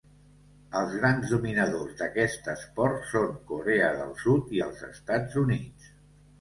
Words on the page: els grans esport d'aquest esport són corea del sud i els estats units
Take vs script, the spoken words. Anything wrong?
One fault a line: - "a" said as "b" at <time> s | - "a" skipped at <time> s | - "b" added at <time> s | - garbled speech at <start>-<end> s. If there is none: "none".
- "esport" said as "dominadors" at 1.3 s